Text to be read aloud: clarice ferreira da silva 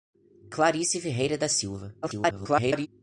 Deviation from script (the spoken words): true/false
true